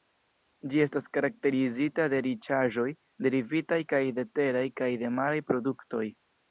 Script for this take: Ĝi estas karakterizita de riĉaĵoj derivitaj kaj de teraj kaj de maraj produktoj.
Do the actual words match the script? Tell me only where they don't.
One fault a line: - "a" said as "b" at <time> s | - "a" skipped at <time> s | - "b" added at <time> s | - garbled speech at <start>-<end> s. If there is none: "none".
none